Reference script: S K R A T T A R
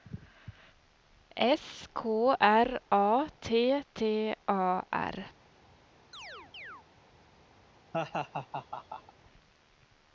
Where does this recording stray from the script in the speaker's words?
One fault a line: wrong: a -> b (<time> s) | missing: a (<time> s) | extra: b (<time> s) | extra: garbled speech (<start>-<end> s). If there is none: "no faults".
no faults